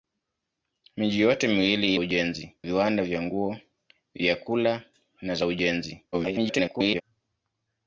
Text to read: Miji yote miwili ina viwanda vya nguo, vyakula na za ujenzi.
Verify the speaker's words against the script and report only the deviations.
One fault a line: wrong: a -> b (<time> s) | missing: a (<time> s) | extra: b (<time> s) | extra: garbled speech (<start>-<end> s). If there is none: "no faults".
wrong: ina -> ujenzi (2.0 s)
extra: garbled speech (6.1-7.0 s)